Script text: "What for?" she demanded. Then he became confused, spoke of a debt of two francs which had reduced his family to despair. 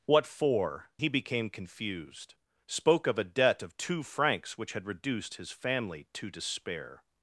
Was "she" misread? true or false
true